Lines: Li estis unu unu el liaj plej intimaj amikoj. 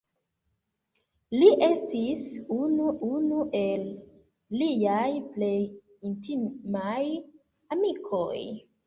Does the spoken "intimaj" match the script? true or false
true